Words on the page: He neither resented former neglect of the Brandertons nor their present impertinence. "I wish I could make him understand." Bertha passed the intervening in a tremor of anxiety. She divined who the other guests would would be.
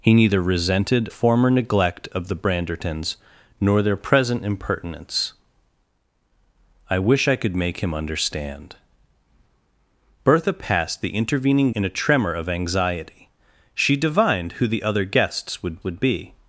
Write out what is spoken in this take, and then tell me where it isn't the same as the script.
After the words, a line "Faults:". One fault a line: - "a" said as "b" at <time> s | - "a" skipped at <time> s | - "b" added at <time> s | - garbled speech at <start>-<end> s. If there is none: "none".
He neither resented former neglect of the Brandertons nor their present impertinence. "I wish I could make him understand." Bertha passed the intervening in a tremor of anxiety. She divined who the other guests would would be.
Faults:
none